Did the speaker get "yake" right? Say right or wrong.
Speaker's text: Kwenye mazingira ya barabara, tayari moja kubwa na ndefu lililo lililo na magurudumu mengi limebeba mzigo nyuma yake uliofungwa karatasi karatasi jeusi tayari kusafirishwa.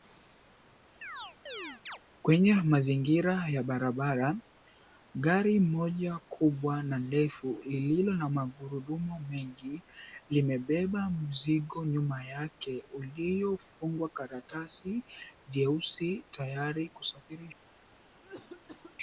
right